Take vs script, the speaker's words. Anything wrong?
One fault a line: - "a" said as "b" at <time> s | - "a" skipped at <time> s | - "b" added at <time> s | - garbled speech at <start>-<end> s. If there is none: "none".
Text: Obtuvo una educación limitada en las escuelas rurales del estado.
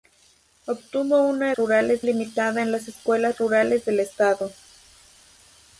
- "educación" said as "rurales" at 1.6 s